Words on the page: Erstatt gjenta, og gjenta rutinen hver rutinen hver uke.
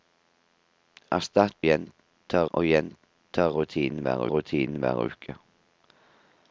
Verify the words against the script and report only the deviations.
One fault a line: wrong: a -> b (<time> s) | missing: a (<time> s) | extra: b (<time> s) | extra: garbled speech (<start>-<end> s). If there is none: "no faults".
no faults